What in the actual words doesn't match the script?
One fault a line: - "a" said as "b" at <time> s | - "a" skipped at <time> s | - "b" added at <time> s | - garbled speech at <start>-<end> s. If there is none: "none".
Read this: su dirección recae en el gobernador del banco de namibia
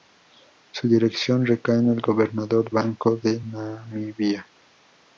- "del" skipped at 2.7 s